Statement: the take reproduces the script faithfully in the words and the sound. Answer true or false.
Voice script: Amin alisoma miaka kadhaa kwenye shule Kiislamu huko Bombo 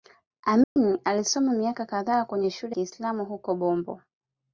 false